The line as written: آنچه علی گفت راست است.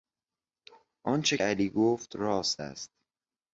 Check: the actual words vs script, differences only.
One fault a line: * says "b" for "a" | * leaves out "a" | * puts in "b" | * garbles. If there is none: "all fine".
all fine